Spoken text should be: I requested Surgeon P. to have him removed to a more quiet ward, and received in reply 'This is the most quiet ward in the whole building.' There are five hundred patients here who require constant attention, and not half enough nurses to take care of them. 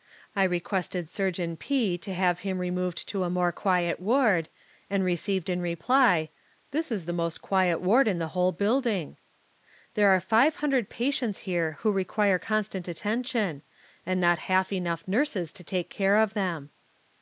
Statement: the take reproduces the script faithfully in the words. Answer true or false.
true